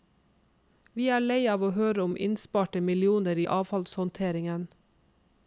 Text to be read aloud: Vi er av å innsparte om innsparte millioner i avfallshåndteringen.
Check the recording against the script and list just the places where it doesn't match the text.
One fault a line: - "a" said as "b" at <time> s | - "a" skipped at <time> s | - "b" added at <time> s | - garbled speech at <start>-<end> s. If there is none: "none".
- "lei" added at 1.2 s
- "innsparte" said as "høre" at 1.8 s